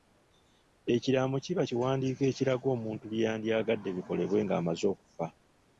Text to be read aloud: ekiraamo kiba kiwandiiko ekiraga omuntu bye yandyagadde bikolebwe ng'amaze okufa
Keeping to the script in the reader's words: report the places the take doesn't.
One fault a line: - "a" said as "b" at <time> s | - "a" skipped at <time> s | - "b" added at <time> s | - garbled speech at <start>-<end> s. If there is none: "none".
none